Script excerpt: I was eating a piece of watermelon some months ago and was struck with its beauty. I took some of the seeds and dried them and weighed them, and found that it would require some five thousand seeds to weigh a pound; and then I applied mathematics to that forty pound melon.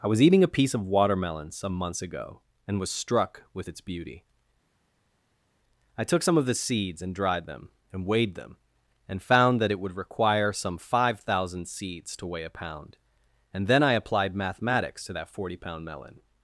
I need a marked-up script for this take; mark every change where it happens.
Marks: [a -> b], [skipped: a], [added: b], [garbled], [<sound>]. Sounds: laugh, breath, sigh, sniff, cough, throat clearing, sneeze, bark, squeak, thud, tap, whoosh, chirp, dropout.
I was eating a piece of watermelon some months ago and was struck with its beauty. I took some of the seeds and dried them and weighed them, and found that it would require some five thousand seeds to weigh a pound; and then I applied mathematics to that forty pound melon.